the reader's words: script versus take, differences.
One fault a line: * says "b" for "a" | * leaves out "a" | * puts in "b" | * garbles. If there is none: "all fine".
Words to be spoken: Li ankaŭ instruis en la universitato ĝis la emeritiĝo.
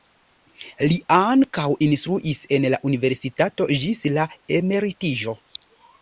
all fine